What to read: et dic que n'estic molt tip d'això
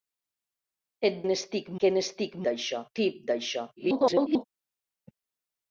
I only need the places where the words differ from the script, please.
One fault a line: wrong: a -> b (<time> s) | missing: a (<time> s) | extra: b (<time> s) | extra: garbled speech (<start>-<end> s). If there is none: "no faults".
wrong: dic -> n'estic (1.3 s)
wrong: molt -> d'això (2.5 s)
extra: garbled speech (3.8-4.4 s)